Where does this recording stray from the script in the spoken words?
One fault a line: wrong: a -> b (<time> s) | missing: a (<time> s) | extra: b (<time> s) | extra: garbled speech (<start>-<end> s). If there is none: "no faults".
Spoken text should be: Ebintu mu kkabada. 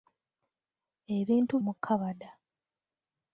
no faults